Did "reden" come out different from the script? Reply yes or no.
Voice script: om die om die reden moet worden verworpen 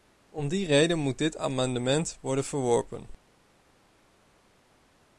yes